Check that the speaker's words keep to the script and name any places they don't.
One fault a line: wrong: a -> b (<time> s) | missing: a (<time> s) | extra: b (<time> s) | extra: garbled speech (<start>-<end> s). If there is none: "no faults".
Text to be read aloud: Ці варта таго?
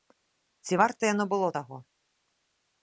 extra: яно было (1.1 s)